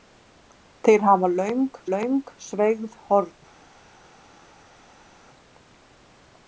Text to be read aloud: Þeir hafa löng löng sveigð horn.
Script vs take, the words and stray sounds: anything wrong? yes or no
no